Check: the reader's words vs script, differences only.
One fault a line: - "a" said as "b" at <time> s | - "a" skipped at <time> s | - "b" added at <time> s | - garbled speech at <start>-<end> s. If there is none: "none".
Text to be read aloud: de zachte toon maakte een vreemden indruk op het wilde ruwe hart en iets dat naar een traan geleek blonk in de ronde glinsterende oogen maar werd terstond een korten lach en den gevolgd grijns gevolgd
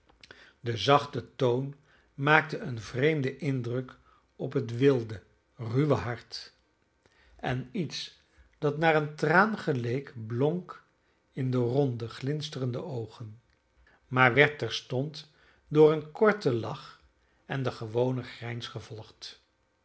- "door" added at 15.7 s
- "gevolgd" said as "gewonen" at 17.7 s